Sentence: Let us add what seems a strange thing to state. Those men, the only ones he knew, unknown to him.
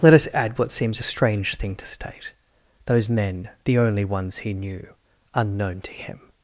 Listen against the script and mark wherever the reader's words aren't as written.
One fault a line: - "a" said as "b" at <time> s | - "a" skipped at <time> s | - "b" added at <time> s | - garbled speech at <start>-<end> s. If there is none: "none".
none